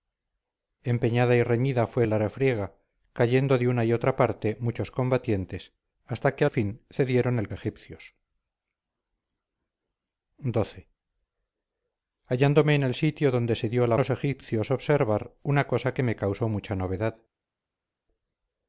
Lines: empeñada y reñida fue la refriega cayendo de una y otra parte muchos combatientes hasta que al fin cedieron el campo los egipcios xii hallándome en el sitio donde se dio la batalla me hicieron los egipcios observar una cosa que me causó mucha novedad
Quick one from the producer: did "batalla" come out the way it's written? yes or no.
no